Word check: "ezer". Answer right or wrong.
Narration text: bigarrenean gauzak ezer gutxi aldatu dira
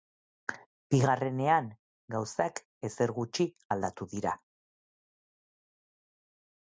right